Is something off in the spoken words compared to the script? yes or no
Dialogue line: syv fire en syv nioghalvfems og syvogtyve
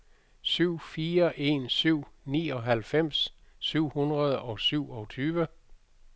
yes